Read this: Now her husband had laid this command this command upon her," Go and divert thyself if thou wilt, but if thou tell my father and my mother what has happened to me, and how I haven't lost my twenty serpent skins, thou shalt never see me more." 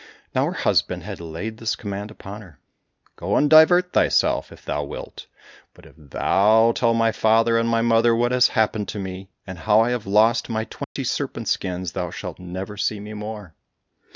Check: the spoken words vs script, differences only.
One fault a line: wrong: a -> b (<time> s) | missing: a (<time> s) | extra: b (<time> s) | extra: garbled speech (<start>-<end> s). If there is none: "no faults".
missing: this command (2.1 s)
wrong: haven't -> have (9.9 s)